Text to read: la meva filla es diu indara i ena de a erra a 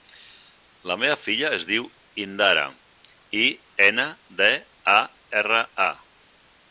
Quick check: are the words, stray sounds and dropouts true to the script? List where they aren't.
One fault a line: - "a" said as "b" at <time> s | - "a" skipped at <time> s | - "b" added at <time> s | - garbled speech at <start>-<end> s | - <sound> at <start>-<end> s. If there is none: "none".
none